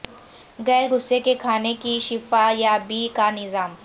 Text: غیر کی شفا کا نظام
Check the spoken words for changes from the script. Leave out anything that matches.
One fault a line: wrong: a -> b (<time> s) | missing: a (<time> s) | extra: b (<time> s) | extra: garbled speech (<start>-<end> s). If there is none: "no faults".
extra: غصے کے کھانے (0.9 s)
extra: یابی (2.6 s)